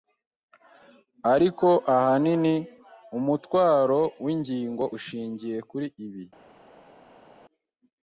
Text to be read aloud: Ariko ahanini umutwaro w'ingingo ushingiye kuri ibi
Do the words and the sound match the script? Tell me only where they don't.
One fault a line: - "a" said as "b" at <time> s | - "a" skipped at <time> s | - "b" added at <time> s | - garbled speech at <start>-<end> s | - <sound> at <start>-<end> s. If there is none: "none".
none